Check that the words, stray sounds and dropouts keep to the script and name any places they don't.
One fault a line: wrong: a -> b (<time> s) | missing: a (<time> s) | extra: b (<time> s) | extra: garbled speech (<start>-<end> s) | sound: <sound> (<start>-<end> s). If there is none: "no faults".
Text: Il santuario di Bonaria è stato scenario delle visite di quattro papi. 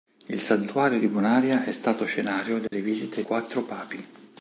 sound: dropout (2.7-2.7 s)
missing: di (3.2 s)